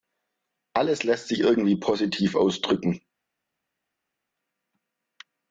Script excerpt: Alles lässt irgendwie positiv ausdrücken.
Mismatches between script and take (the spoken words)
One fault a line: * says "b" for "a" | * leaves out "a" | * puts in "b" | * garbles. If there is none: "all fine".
* puts in "sich"